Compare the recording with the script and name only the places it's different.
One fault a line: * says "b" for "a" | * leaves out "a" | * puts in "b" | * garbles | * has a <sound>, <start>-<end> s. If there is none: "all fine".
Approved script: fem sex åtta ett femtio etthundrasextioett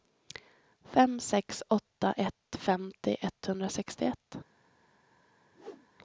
* has a whoosh, 5.5-5.9 s